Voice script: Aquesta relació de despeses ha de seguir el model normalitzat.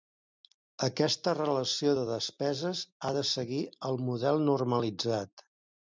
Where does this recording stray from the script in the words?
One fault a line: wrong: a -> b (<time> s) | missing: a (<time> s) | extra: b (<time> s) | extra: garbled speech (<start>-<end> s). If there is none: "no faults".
no faults